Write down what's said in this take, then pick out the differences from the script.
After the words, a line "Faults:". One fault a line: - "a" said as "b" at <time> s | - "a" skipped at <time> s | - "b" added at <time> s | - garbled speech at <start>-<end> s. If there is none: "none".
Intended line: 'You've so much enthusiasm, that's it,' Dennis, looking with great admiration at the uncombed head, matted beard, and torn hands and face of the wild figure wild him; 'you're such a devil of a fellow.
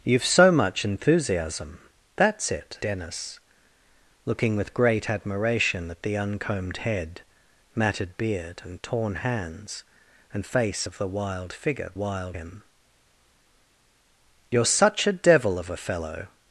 'You've so much enthusiasm, that's it,' Dennis, looking with great admiration at the uncombed head, matted beard, and torn hands and face of the wild figure wild him; 'you're such a devil of a fellow.
Faults:
none